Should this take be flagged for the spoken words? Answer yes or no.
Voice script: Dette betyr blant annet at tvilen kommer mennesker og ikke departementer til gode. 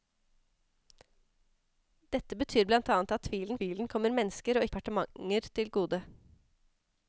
yes